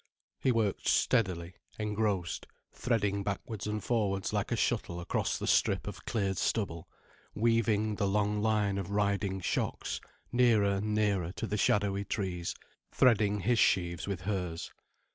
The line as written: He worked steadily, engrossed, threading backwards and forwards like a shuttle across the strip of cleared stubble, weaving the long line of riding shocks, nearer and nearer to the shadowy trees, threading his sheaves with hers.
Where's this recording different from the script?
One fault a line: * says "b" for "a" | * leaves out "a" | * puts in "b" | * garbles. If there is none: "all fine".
all fine